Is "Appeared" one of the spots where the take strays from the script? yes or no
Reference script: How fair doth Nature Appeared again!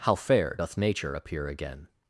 yes